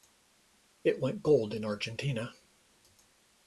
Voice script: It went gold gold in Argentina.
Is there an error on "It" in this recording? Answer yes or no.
no